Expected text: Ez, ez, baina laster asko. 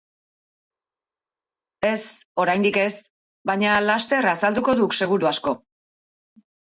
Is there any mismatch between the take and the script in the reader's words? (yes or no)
yes